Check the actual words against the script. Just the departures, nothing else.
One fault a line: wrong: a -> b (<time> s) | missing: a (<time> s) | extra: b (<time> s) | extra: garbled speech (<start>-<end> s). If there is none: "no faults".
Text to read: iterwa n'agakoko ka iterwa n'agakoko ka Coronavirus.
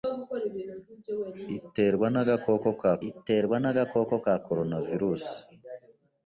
no faults